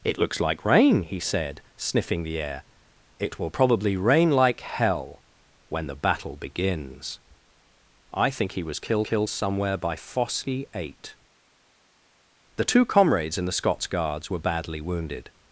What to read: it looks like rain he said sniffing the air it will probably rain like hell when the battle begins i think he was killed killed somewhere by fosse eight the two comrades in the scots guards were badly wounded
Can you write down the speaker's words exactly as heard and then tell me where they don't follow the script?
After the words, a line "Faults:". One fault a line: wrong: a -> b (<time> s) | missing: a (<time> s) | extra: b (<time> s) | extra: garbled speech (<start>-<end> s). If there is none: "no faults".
it looks like rain he said sniffing the air it will probably rain like hell when the battle begins i think he was killed killed somewhere by fosse eight the two comrades in the scots guards were badly wounded
Faults:
no faults